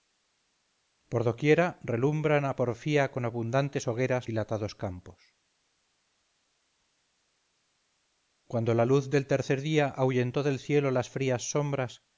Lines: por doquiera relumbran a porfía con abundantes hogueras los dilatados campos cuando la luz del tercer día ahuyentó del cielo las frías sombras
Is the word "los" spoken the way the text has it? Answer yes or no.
no